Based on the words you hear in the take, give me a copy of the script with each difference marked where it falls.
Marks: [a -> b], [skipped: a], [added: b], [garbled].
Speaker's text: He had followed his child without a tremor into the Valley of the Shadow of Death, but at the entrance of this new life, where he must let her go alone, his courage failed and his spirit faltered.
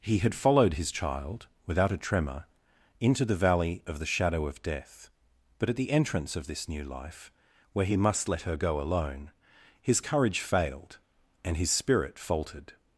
He had followed his child without a tremor into the Valley of the Shadow of Death, but at the entrance of this new life, where he must let her go alone, his courage failed and his spirit faltered.